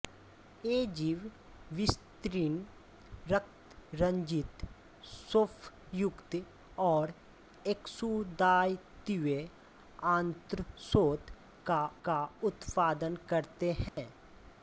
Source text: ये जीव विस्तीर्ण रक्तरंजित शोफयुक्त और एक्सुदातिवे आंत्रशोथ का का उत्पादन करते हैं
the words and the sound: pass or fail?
fail